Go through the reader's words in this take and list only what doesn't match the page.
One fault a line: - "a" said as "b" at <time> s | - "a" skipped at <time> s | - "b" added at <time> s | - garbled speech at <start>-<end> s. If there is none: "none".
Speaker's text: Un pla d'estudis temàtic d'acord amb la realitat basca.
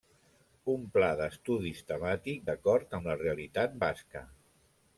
none